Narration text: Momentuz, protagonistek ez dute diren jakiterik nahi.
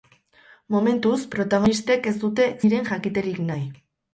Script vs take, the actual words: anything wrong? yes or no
no